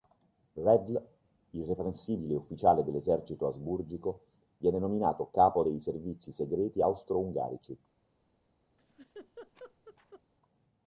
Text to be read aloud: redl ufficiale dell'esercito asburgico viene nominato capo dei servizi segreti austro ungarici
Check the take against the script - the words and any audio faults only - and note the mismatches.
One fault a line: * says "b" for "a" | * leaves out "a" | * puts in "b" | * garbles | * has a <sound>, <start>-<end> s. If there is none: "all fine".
* puts in "irreprensibile"
* has a laugh, 8.8-10.2 s